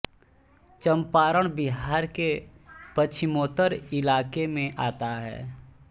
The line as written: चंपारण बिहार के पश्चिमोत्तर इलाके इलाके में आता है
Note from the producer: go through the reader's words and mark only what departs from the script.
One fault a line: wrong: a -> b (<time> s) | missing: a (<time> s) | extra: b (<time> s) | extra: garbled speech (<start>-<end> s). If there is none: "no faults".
missing: इलाके (4.5 s)